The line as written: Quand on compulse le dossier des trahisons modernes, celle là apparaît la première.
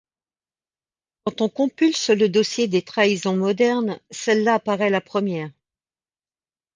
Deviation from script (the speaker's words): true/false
false